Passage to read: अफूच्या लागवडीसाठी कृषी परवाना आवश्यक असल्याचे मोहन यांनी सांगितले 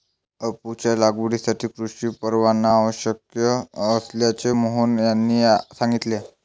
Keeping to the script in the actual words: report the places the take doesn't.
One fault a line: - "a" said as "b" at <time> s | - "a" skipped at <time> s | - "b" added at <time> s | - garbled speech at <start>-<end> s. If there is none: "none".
none